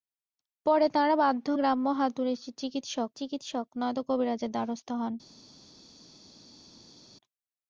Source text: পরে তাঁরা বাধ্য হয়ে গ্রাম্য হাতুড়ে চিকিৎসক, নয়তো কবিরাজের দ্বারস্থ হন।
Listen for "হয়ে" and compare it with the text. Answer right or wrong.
wrong